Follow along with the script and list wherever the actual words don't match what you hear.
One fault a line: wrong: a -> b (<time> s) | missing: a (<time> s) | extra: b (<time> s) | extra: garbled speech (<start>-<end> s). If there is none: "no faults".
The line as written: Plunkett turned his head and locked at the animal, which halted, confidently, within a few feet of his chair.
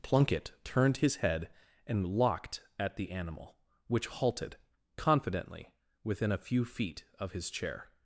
no faults